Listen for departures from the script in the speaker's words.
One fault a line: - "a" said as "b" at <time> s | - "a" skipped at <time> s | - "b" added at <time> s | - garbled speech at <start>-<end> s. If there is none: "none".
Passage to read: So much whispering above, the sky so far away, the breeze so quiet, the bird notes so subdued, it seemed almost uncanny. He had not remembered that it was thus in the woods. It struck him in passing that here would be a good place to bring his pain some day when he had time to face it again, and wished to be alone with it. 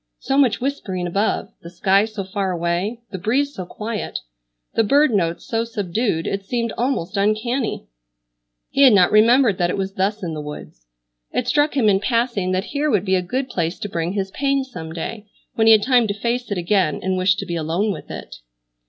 none